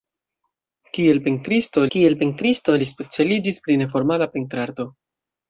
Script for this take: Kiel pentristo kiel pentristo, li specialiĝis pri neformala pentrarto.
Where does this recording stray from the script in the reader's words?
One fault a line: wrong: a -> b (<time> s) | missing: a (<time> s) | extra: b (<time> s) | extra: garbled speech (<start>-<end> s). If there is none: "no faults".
no faults